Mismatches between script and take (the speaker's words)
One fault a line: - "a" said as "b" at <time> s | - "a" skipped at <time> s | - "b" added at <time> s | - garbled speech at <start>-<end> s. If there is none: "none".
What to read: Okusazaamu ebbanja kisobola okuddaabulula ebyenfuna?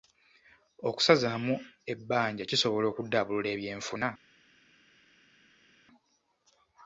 none